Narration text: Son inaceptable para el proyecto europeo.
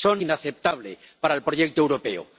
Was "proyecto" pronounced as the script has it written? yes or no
yes